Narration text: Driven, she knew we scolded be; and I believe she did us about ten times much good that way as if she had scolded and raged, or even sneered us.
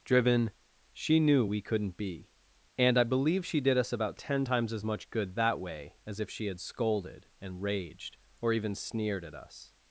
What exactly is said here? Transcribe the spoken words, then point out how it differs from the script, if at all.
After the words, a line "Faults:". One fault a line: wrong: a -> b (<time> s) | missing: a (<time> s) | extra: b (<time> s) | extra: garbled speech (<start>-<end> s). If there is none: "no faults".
Driven, she knew we couldn't be; and I believe she did us about ten times as much good that way as if she had scolded and raged, or even sneered at us.
Faults:
wrong: scolded -> couldn't (1.6 s)
extra: as (4.7 s)
extra: at (9.2 s)